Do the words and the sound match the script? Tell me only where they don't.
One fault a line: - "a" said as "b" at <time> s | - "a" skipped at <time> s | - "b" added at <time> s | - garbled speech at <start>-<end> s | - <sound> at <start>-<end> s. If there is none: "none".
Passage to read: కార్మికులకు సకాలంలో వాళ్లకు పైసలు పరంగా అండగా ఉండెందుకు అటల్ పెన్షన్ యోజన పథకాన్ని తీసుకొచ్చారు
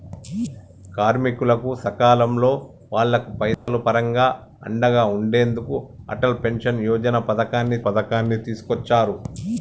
- dropout at 3.5-3.7 s
- "పథకాన్ని" added at 7.9 s